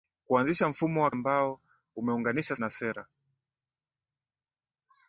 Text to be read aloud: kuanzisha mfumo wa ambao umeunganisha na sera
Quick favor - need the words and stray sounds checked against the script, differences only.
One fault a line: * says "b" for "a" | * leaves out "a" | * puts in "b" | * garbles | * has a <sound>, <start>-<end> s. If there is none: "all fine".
all fine